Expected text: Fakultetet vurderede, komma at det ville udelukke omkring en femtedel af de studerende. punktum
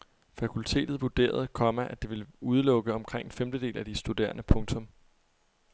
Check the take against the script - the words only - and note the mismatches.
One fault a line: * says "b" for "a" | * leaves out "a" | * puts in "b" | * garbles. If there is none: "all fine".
all fine